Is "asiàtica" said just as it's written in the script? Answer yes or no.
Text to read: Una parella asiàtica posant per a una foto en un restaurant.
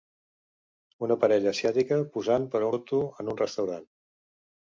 yes